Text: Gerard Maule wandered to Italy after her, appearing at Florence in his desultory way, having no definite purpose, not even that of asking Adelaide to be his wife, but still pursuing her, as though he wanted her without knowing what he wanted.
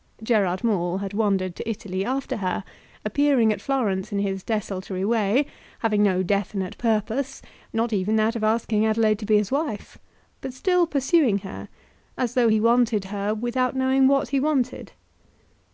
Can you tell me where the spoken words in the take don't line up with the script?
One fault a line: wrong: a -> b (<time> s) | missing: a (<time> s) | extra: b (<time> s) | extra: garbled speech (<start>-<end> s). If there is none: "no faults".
extra: had (1.0 s)